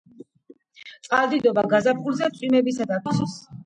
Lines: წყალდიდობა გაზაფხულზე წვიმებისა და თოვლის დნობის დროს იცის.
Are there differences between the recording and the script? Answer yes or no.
yes